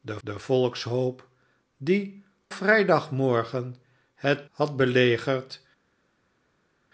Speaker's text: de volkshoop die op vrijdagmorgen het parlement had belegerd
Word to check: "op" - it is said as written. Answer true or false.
false